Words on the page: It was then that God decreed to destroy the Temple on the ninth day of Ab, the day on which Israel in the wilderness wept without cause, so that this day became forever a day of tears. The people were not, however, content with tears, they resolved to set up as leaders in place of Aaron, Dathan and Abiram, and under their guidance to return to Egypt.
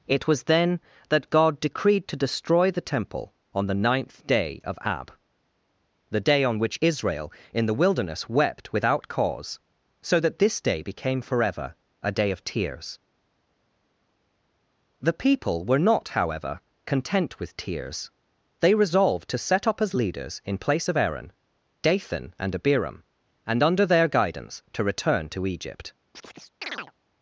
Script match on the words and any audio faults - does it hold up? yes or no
no